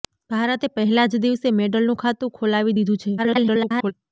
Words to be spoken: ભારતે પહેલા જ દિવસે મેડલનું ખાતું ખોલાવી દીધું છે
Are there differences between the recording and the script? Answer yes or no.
yes